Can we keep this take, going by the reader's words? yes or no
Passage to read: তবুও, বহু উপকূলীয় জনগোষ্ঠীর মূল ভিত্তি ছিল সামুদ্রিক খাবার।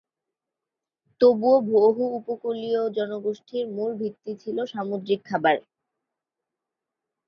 yes